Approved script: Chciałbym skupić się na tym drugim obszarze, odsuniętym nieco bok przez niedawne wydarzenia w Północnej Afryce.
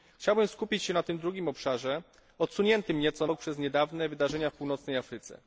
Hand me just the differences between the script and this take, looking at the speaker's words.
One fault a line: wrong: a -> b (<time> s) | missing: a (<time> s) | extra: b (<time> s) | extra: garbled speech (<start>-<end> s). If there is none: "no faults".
no faults